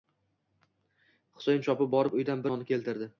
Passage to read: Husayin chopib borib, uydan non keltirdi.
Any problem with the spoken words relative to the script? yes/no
no